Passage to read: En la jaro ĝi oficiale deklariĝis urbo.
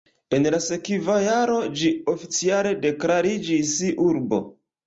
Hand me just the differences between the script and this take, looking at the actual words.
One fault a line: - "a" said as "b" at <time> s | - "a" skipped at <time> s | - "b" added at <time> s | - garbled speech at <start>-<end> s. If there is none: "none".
- "sekva" added at 0.7 s